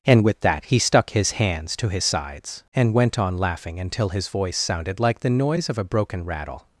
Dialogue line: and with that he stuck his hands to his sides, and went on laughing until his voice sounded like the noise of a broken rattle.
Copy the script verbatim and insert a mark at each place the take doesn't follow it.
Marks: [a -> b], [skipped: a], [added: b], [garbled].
and with that he stuck his hands to his sides, and went on laughing until his voice sounded like the noise of a broken rattle.